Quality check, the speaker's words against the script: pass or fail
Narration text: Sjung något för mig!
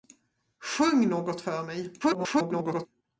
fail